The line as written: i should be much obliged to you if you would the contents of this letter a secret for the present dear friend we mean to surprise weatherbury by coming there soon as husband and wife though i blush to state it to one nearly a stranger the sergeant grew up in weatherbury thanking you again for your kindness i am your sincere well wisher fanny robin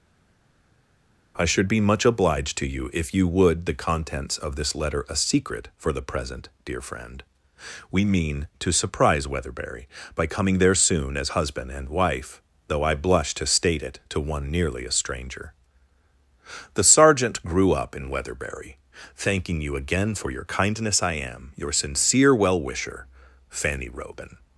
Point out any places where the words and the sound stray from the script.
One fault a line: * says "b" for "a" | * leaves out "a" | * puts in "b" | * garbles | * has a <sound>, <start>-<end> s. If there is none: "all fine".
all fine